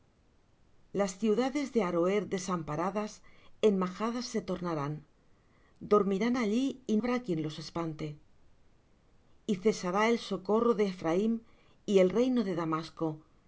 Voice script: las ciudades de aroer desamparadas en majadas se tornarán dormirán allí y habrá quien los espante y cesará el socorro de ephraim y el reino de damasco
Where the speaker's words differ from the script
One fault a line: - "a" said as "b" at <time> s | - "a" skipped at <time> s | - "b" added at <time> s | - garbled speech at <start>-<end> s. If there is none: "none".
none